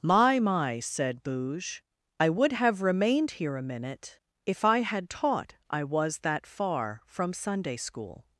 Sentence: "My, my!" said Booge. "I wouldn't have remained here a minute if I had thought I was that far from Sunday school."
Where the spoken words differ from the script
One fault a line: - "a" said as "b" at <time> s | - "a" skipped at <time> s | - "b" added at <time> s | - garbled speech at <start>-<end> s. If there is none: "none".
- "wouldn't" said as "would" at 2.3 s
- "thought" said as "taught" at 5.1 s